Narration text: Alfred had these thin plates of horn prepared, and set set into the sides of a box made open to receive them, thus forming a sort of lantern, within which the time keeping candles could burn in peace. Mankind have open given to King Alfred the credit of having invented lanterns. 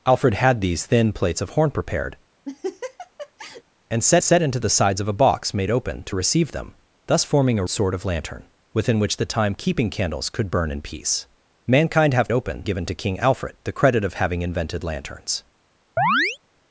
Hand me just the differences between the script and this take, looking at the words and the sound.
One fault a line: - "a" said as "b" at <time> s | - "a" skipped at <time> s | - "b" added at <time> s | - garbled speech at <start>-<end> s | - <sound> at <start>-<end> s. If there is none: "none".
- laugh at 2.5-3.6 s
- chirp at 16.0-16.4 s